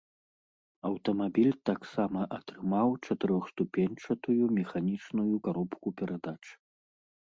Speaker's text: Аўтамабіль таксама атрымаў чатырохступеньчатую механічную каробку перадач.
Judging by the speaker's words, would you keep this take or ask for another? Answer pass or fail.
pass